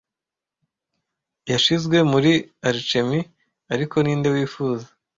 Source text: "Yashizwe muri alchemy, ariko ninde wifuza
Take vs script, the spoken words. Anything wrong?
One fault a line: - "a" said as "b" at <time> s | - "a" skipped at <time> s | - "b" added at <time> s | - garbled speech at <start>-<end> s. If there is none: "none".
none